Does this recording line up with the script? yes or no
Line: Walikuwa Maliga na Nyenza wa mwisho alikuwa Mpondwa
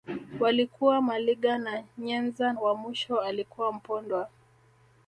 yes